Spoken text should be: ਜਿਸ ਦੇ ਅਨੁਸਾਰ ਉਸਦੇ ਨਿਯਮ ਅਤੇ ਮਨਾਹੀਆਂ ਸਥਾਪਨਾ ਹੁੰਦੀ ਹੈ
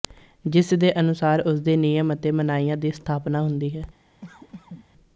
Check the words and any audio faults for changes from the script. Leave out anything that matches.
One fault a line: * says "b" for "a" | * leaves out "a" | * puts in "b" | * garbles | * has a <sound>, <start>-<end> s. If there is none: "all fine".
* puts in "ਦੀ"
* has a cough, 4.2-4.9 s